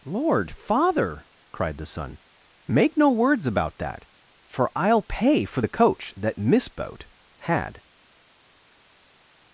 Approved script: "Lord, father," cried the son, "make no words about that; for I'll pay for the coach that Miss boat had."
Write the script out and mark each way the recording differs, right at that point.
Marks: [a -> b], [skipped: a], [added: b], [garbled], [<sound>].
"Lord, father," cried the son, "make no words about that; for I'll pay for the coach that Miss boat had."